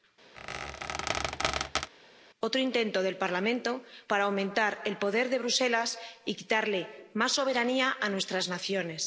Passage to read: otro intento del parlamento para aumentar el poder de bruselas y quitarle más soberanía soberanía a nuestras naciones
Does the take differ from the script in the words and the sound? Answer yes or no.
yes